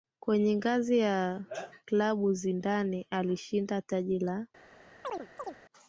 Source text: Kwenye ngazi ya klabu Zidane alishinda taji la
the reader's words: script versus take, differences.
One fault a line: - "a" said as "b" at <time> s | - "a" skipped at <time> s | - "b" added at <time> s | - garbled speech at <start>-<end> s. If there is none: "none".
none